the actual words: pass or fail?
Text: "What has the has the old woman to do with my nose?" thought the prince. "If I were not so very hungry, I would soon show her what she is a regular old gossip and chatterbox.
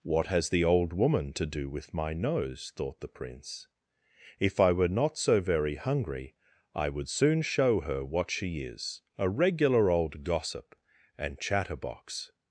fail